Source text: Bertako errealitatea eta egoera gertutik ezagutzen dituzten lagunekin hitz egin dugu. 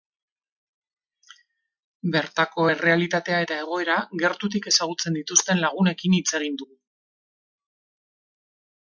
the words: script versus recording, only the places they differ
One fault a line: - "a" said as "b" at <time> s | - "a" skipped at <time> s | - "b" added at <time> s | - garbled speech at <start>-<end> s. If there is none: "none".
none